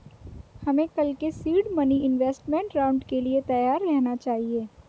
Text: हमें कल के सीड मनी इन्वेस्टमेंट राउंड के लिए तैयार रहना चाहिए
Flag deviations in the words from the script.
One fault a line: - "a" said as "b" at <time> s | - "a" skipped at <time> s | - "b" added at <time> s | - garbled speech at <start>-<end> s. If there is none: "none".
none